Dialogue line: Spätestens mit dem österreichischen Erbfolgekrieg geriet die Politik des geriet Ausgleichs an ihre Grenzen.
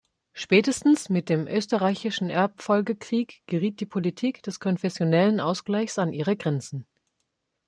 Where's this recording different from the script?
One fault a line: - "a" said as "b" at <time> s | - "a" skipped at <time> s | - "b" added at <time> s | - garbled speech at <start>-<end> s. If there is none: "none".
- "geriet" said as "konfessionellen" at 4.6 s